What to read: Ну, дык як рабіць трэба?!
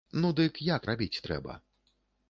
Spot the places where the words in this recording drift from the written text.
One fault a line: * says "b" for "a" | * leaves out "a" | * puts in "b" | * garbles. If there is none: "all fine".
all fine